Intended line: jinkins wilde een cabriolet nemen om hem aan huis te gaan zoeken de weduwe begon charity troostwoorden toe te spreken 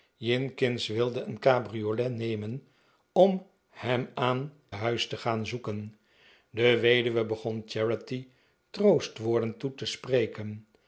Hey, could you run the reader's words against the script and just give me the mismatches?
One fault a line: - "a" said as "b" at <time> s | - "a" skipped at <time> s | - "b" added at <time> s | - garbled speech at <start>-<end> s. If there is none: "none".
none